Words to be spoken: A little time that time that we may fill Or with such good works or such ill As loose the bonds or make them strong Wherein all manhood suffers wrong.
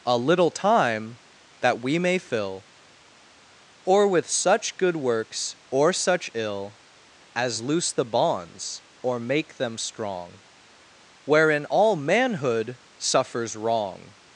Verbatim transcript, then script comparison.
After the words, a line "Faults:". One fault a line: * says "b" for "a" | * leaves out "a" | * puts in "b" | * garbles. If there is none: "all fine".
A little time that we may fill Or with such good works or such ill As loose the bonds or make them strong Wherein all manhood suffers wrong.
Faults:
* leaves out "time that"